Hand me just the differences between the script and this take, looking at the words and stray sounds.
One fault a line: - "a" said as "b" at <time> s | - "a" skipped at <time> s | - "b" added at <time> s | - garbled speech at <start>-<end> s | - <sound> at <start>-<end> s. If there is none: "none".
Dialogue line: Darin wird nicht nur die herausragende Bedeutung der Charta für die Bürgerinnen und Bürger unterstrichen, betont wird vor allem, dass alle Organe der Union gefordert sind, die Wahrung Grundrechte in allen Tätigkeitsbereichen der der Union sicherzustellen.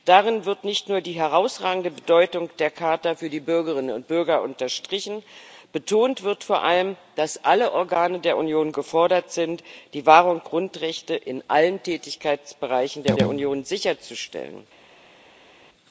none